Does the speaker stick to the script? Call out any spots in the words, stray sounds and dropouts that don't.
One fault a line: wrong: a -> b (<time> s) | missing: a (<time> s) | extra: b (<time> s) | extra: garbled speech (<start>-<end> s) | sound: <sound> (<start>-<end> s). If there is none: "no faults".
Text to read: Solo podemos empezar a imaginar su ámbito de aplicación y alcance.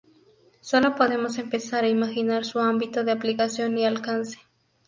no faults